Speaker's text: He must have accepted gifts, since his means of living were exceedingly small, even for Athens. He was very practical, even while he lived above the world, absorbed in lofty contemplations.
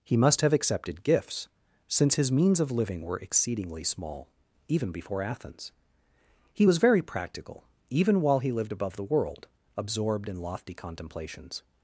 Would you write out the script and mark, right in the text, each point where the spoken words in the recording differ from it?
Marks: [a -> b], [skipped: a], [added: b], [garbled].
He must have accepted gifts, since his means of living were exceedingly small, even [for -> before] Athens. He was very practical, even while he lived above the world, absorbed in lofty contemplations.